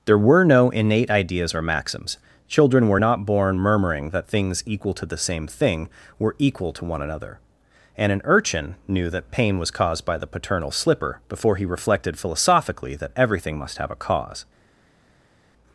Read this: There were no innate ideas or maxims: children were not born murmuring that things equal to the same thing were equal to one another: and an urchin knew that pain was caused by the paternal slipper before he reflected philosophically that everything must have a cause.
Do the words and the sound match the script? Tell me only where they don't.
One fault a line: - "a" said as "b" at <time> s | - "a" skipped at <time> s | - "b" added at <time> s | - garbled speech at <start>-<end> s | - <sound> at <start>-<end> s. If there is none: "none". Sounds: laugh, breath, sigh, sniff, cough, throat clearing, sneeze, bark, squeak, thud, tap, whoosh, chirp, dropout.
none